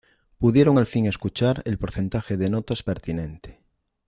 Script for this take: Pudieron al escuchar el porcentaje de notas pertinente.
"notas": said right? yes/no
yes